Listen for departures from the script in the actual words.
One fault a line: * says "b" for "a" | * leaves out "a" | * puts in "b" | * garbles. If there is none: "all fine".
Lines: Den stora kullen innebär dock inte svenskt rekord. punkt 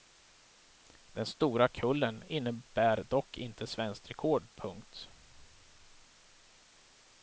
all fine